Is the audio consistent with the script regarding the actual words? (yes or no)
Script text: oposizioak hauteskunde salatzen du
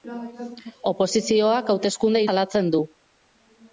yes